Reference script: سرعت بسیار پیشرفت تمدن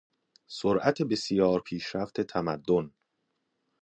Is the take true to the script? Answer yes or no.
yes